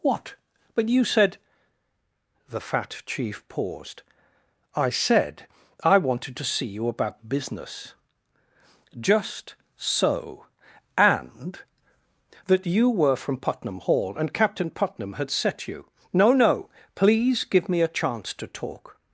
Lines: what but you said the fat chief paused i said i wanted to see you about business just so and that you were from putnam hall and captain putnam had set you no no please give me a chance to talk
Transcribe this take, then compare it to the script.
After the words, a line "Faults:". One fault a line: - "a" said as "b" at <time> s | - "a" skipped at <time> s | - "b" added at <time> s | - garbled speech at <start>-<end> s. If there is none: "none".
what but you said the fat chief paused i said i wanted to see you about business just so and that you were from putnam hall and captain putnam had set you no no please give me a chance to talk
Faults:
none